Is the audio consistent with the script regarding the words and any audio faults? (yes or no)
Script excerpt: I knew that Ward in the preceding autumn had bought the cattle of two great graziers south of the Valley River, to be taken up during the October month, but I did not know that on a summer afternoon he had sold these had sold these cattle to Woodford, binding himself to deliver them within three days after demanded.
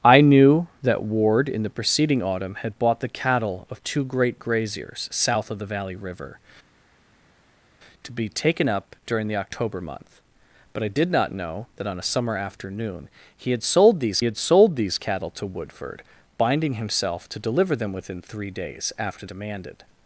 yes